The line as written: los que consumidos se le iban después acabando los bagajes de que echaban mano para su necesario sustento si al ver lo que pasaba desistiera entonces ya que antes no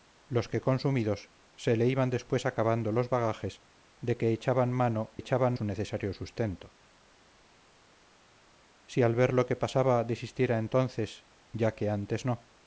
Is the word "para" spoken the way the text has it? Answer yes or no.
no